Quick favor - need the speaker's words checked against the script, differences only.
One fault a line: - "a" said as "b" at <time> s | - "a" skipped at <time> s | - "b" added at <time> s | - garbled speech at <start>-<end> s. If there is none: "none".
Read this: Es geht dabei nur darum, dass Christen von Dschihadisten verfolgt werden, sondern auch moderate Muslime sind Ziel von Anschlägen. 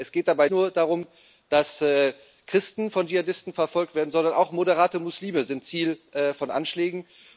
none